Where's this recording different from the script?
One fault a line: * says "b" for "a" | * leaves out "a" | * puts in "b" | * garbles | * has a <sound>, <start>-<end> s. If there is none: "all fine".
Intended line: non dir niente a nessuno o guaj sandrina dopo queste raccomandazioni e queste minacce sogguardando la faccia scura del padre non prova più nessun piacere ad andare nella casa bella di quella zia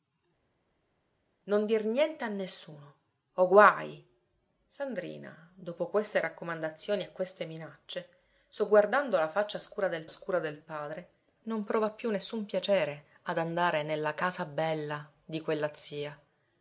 * puts in "scura del"